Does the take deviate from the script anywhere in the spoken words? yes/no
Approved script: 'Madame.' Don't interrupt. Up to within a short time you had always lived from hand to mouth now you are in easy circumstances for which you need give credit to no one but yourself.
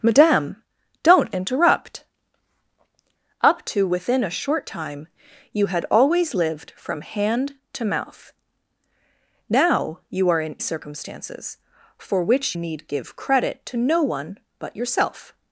yes